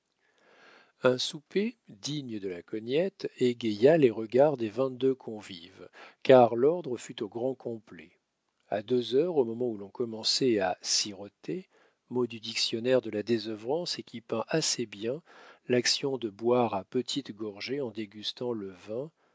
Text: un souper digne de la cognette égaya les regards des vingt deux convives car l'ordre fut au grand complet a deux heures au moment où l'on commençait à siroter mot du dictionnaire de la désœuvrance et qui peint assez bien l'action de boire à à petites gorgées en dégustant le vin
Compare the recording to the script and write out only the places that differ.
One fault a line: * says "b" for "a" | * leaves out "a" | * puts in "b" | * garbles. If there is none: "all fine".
* leaves out "à"